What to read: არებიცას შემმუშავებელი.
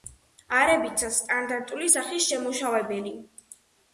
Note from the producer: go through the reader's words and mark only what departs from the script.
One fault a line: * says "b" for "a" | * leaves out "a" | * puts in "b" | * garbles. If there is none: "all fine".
* puts in "სტანდარტული სახის"